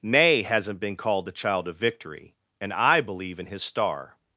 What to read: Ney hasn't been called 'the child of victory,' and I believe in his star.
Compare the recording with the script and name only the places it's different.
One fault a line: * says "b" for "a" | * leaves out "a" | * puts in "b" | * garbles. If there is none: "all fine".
all fine